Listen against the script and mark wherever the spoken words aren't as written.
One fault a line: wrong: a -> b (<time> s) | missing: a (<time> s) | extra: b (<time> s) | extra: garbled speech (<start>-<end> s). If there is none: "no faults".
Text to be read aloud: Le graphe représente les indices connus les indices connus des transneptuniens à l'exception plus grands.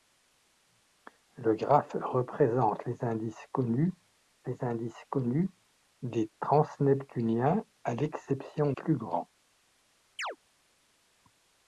no faults